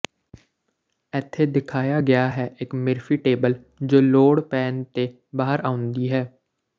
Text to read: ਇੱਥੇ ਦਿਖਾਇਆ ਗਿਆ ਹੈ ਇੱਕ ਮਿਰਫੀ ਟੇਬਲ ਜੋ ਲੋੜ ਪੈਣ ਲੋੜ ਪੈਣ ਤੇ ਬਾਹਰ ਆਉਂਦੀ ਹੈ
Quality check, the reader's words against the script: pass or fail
fail